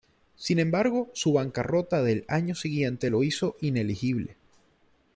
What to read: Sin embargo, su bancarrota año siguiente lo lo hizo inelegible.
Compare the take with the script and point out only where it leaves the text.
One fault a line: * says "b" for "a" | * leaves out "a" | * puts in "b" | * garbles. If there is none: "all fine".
* puts in "del"
* leaves out "lo"